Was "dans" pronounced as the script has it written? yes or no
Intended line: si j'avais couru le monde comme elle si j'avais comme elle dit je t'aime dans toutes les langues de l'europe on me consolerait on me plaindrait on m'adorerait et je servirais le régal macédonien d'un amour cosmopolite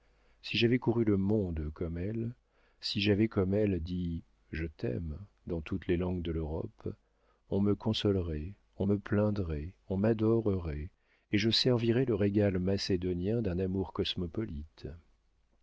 yes